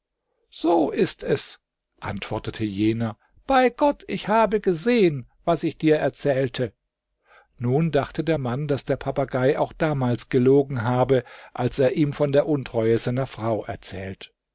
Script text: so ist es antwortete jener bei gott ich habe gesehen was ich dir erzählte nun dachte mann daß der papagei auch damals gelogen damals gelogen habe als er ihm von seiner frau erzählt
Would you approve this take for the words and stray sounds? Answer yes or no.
no